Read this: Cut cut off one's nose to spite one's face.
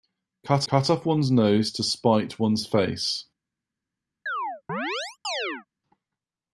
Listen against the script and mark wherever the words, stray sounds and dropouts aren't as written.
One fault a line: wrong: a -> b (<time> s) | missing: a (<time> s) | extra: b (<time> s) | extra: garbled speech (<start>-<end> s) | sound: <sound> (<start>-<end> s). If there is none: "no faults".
sound: chirp (4.3-5.7 s)